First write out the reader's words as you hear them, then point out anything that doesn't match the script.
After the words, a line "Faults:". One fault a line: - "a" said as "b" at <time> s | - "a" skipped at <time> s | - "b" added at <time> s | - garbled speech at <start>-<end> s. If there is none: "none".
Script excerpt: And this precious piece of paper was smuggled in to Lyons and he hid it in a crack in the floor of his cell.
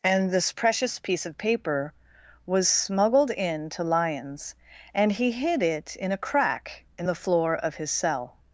And this precious piece of paper was smuggled in to Lyons and he hid it in a crack in the floor of his cell.
Faults:
none